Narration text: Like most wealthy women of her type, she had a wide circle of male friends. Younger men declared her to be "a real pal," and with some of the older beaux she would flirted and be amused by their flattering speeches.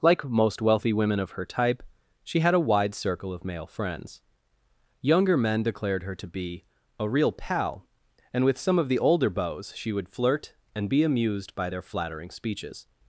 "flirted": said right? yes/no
no